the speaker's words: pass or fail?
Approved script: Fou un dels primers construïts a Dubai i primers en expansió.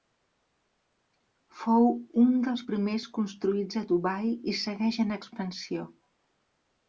fail